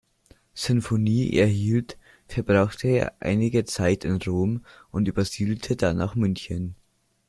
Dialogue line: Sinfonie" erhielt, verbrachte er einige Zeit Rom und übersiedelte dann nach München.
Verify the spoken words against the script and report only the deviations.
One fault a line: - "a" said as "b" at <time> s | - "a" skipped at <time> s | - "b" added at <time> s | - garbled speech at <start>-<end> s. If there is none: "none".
- "in" added at 4.0 s